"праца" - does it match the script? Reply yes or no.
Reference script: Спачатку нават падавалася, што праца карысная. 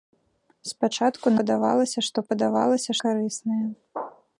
no